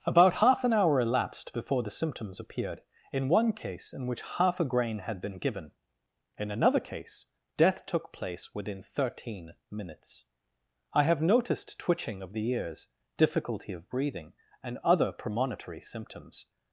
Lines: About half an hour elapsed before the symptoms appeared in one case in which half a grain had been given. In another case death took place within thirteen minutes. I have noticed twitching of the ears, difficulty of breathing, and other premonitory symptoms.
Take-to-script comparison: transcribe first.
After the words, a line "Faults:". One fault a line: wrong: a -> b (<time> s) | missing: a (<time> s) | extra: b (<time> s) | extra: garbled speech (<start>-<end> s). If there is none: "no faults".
About half an hour elapsed before the symptoms appeared in one case in which half a grain had been given. In another case death took place within thirteen minutes. I have noticed twitching of the ears, difficulty of breathing, and other premonitory symptoms.
Faults:
no faults